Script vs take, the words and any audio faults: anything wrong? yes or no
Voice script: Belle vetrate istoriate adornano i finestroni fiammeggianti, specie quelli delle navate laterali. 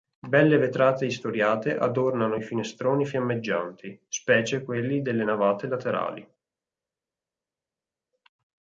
no